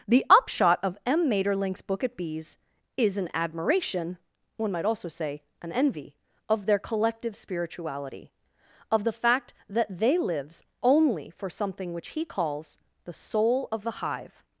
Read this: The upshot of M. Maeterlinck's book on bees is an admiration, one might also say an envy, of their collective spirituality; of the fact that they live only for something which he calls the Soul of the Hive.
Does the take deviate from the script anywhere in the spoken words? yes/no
yes